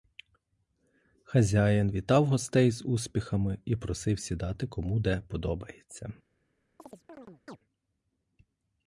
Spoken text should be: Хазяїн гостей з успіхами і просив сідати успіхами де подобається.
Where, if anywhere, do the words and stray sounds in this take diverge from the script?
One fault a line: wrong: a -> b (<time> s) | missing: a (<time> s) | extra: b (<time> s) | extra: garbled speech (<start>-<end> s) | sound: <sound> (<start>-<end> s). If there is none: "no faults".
extra: вітав (1.9 s)
wrong: успіхами -> кому (4.7 s)
sound: chirp (6.8-7.6 s)